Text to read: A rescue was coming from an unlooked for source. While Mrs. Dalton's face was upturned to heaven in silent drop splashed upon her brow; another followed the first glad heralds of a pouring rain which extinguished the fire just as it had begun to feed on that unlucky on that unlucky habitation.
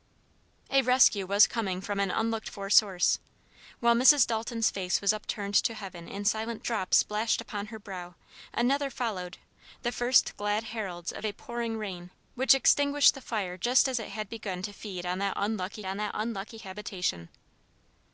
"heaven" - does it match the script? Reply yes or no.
yes